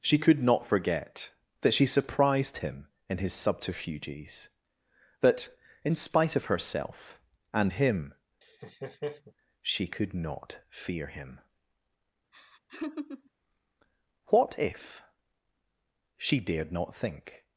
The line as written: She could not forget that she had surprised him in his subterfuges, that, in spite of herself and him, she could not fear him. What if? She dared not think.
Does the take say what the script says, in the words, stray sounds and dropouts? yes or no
no